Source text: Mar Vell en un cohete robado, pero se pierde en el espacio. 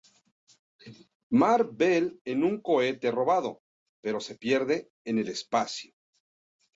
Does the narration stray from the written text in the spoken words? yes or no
no